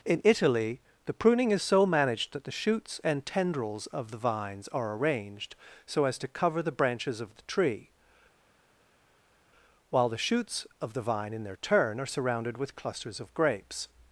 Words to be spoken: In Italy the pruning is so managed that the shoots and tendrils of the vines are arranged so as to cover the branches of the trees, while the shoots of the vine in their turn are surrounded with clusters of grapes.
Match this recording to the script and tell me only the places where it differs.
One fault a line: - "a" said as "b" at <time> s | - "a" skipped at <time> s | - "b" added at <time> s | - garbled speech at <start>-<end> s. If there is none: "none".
- "trees" said as "tree" at 7.4 s